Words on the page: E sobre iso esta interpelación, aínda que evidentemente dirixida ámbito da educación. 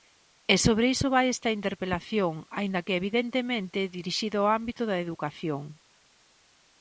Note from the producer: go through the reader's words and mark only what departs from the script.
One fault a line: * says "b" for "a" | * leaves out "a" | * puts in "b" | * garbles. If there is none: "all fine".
* puts in "vai"
* puts in "ao"